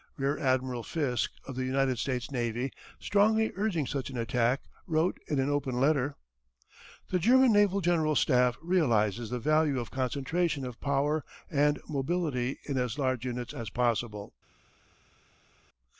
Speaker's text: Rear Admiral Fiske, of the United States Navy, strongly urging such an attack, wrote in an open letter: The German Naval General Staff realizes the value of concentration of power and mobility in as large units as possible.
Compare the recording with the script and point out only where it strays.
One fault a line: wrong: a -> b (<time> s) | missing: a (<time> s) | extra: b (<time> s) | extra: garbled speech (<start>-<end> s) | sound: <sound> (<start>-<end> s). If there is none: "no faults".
no faults